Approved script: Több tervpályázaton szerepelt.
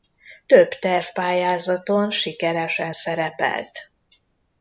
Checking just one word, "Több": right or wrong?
right